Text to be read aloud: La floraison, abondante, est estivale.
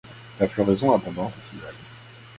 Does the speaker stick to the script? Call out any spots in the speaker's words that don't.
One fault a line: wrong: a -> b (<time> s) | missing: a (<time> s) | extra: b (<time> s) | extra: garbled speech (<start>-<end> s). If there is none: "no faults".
missing: est (1.4 s)